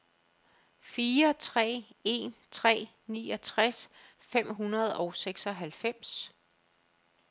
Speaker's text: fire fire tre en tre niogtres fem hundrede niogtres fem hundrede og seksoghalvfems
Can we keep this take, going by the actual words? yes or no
no